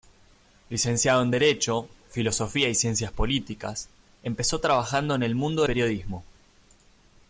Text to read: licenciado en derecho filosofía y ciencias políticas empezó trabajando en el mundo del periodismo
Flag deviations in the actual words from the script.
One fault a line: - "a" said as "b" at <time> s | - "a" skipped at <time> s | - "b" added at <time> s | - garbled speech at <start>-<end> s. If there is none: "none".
- "del" skipped at 5.6 s